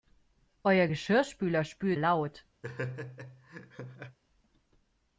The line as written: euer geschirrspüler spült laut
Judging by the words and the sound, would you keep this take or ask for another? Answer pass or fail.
fail